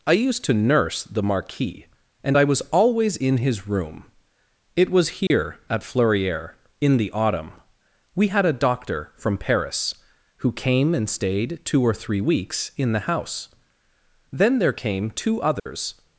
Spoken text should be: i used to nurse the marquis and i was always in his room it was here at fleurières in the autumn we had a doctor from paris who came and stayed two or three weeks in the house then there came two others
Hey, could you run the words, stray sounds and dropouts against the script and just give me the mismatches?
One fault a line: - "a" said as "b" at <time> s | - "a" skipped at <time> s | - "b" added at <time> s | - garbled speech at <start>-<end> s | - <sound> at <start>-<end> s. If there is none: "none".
- dropout at 5.3-5.3 s
- dropout at 15.6-15.7 s